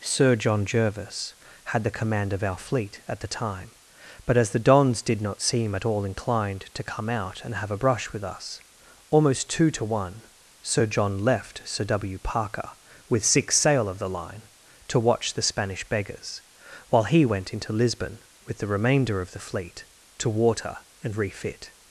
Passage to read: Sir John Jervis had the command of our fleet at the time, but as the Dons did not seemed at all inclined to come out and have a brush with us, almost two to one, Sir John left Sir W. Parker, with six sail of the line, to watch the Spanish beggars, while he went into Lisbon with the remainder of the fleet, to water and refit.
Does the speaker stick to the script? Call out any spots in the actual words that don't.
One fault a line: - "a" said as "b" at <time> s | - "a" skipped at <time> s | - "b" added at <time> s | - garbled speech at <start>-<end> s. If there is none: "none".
- "seemed" said as "seem" at 5.4 s